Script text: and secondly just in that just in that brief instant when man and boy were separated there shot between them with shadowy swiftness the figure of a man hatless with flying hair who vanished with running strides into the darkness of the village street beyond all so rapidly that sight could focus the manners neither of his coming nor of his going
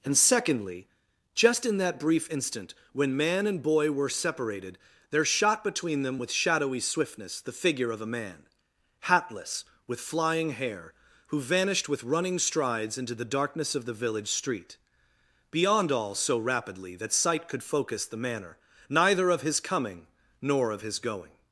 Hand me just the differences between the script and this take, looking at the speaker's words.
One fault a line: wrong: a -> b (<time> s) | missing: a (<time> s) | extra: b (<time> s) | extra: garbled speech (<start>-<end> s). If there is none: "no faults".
missing: just in that (2.0 s)
wrong: manners -> manner (18.2 s)